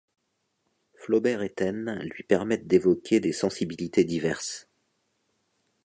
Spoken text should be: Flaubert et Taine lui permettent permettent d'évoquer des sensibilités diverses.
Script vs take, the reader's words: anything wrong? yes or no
yes